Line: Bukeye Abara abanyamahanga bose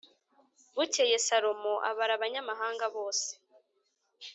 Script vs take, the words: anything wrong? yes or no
yes